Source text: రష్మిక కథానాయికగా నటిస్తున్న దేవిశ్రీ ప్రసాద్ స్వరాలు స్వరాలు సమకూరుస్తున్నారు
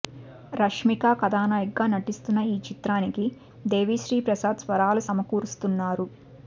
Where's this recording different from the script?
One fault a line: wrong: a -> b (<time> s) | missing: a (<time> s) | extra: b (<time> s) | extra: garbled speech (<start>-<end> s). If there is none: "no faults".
extra: ఈ చిత్రానికి (2.5 s)
missing: స్వరాలు (5.0 s)